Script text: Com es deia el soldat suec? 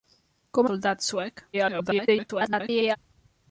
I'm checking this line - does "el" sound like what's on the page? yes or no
no